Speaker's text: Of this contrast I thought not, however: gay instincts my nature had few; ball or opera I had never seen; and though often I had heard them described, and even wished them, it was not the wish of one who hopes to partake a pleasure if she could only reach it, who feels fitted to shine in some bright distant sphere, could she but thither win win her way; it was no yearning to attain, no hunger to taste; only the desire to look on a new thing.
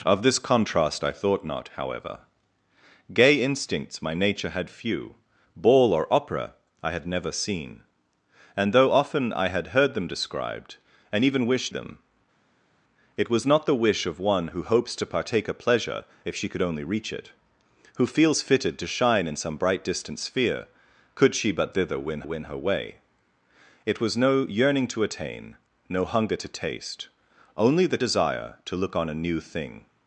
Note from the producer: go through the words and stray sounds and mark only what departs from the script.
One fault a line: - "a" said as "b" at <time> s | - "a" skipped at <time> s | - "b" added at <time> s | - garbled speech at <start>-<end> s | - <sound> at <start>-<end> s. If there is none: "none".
none